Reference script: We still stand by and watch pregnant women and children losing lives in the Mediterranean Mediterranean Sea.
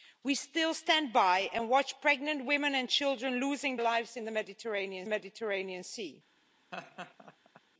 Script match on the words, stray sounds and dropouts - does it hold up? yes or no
no